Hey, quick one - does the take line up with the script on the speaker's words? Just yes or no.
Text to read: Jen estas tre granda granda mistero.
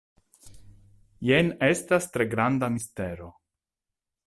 no